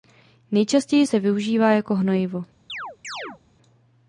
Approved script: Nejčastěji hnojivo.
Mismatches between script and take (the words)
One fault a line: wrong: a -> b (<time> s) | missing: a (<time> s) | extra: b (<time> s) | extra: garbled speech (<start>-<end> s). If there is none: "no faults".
extra: se využívá jako (1.0 s)